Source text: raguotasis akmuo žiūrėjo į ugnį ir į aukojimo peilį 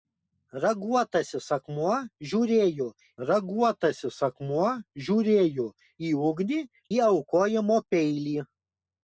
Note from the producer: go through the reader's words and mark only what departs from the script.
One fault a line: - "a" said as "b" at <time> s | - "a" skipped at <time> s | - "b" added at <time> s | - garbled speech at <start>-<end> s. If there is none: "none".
- "raguotasis akmuo žiūrėjo" added at 3.3 s
- "ir" skipped at 6.6 s